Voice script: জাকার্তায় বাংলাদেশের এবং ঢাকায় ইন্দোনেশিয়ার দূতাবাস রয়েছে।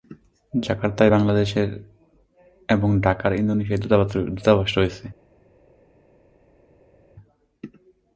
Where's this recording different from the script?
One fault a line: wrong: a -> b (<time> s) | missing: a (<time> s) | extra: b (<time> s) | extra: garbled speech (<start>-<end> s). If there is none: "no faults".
no faults